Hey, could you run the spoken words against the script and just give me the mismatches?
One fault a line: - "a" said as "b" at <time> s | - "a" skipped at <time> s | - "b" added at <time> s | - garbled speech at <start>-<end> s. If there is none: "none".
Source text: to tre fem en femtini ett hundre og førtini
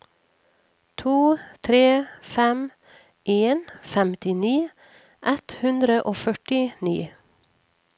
none